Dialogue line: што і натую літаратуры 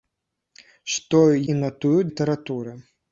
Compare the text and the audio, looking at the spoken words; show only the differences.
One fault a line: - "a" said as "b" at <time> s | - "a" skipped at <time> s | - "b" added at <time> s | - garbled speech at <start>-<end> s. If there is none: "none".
none